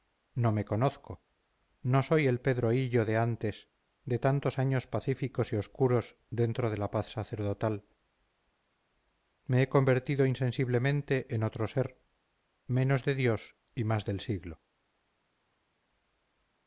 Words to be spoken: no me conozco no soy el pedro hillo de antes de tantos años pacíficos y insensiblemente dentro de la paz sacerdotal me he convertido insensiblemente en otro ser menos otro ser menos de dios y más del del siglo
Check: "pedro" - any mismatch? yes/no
no